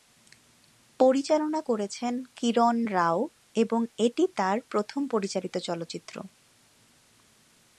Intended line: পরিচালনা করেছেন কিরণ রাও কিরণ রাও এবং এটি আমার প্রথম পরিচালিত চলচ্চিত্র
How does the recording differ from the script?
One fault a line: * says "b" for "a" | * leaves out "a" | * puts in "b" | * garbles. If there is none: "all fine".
* leaves out "কিরণ রাও"
* says "তার" for "আমার"